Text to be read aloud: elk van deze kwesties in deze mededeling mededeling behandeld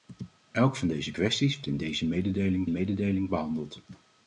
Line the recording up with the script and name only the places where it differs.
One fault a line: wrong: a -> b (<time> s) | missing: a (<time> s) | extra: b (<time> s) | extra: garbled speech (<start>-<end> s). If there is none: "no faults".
no faults